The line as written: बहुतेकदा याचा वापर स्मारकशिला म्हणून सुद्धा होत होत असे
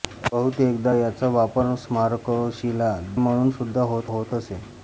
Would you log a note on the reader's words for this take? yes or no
no